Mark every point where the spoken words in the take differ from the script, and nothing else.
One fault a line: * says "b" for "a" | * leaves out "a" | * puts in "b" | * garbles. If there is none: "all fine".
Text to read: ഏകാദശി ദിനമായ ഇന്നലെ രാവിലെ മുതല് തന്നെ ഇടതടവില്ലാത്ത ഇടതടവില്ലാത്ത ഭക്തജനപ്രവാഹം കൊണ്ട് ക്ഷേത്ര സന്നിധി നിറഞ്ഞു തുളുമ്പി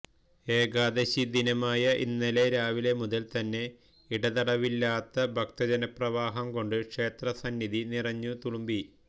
* leaves out "ഇടതടവില്ലാത്ത"